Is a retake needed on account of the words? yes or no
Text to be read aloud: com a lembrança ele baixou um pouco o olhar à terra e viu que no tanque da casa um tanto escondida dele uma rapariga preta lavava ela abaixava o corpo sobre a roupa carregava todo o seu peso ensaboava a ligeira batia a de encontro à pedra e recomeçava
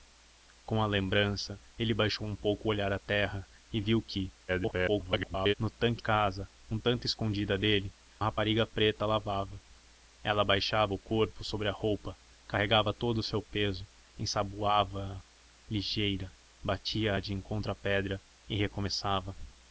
yes